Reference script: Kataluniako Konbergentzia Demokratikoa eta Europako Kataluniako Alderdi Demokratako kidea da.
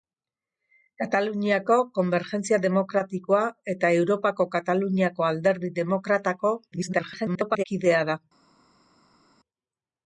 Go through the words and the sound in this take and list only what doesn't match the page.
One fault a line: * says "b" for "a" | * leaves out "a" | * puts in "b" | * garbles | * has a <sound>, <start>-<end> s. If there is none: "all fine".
* garbles